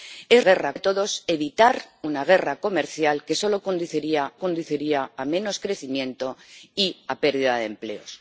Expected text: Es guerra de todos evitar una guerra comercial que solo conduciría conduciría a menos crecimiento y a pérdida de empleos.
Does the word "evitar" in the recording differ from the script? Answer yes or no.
no